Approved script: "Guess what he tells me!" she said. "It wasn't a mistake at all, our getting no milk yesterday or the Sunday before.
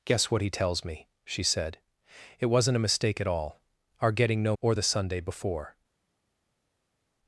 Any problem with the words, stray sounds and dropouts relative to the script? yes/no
yes